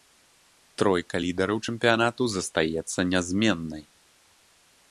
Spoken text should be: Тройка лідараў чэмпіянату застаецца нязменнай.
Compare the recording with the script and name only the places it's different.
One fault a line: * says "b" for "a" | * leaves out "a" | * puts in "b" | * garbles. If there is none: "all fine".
all fine